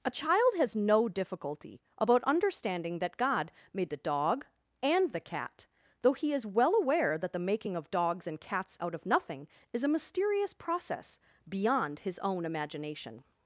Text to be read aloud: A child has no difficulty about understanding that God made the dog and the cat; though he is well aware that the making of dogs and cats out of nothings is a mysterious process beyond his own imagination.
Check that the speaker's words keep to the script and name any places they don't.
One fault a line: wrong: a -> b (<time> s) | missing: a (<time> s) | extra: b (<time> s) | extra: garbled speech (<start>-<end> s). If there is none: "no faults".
wrong: nothings -> nothing (9.1 s)